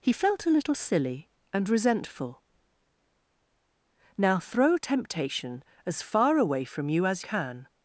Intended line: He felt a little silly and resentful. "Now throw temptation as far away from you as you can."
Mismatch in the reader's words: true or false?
true